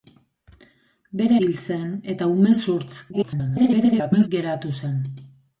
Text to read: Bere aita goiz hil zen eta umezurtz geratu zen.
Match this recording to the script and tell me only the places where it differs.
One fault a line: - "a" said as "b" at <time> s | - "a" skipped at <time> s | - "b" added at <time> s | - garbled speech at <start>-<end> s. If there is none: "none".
- "aita goiz" skipped at 1.4 s
- garbled speech at 3.1-4.3 s